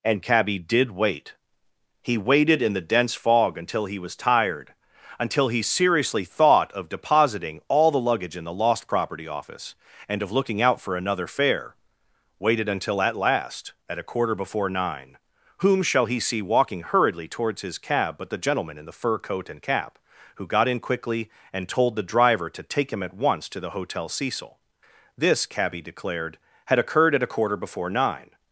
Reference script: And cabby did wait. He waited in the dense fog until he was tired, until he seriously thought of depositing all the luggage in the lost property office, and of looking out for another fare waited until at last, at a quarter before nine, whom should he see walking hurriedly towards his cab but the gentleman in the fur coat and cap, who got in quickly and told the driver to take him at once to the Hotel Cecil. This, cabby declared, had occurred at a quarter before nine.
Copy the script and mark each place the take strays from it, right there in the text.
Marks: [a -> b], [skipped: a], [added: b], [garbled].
And cabby did wait. He waited in the dense fog until he was tired, until he seriously thought of depositing all the luggage in the lost property office, and of looking out for another fare waited until at last, at a quarter before nine, whom [should -> shall] he see walking hurriedly towards his cab but the gentleman in the fur coat and cap, who got in quickly and told the driver to take him at once to the Hotel Cecil. This, cabby declared, had occurred at a quarter before nine.